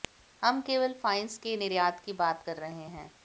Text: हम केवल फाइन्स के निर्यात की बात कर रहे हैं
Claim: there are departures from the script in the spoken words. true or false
false